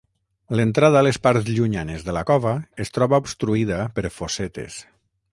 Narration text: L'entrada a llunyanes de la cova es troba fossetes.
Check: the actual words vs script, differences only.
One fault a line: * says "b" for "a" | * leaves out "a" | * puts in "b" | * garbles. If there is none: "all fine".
* puts in "les parts"
* puts in "obstruïda per"